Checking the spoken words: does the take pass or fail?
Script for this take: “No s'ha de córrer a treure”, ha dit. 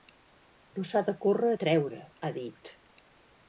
pass